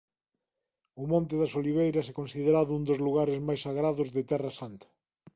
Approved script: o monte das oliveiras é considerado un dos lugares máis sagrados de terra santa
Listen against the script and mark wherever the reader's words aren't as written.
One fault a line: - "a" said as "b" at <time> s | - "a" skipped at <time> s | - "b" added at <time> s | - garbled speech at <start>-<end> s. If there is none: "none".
none